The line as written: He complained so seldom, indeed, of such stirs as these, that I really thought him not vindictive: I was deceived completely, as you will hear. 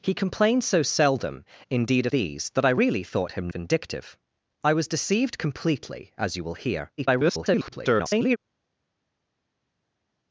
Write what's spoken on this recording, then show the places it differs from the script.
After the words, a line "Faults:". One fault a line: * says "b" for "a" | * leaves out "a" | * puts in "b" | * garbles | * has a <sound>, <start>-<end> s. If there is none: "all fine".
He complained so seldom, indeed, of these, that I really thought him vindictive: I was deceived completely, as you will hear. [garbled]
Faults:
* leaves out "such stirs as"
* leaves out "not"
* garbles